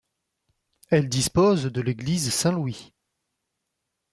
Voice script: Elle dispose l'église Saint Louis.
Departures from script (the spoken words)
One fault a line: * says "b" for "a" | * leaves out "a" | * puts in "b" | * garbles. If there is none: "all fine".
* puts in "de"